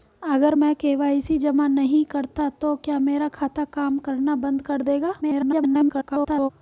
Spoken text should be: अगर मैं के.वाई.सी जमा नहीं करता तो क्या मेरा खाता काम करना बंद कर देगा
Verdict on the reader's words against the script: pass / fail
fail